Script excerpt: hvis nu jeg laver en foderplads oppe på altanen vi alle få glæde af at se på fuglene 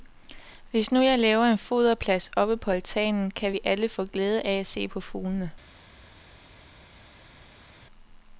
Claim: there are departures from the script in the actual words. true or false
true